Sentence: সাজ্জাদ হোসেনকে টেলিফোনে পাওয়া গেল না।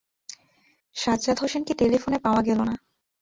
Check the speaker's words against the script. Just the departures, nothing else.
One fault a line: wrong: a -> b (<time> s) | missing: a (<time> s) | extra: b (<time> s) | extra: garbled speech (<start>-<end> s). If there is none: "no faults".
no faults